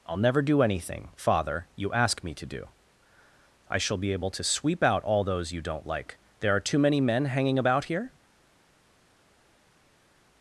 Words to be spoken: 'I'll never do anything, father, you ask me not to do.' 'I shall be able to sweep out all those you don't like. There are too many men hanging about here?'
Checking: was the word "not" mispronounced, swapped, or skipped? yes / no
yes